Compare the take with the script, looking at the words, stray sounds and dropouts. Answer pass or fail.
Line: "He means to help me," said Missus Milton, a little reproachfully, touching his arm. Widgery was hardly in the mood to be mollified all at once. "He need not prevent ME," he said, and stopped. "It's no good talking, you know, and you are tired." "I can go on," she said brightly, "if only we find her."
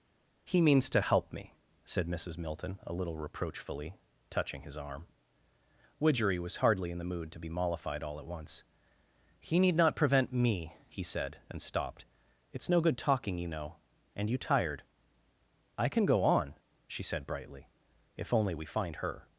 fail